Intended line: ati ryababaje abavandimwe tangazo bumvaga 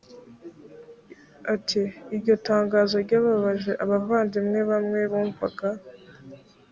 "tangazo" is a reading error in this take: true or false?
true